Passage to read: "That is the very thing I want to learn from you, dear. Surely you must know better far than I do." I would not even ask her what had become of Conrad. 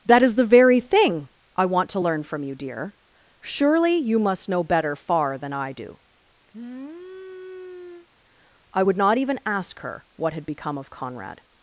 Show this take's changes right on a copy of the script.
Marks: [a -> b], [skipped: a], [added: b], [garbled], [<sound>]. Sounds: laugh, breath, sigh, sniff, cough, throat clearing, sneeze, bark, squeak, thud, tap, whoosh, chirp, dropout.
"That is the very thing I want to learn from you, dear. Surely you must know better far than I do." [sniff] I would not even ask her what had become of Conrad.